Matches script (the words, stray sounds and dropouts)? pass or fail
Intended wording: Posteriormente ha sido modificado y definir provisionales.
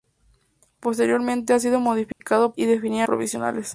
fail